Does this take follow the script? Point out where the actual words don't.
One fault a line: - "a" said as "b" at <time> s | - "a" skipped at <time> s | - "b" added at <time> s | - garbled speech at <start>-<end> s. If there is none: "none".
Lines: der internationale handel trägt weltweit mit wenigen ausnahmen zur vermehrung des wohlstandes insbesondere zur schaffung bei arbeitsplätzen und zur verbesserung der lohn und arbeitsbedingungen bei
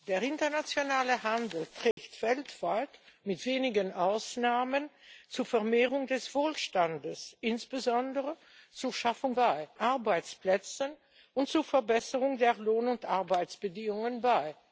none